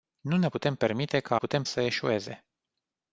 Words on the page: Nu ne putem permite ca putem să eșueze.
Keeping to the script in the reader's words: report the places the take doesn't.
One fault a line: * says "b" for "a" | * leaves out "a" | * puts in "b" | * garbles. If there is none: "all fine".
all fine